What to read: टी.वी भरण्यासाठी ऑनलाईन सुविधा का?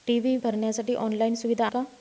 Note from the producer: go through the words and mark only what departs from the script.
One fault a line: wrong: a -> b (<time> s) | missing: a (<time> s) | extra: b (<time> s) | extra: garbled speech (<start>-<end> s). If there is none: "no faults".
no faults